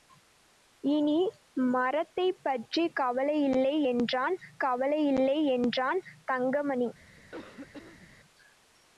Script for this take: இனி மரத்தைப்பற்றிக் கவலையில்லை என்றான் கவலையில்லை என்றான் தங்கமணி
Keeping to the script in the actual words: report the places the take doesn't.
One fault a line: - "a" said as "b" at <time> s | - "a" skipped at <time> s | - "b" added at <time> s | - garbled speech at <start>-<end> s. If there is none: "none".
none